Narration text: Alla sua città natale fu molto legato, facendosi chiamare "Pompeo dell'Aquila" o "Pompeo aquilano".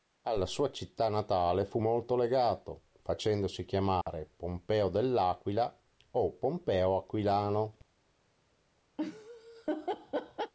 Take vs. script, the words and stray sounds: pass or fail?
fail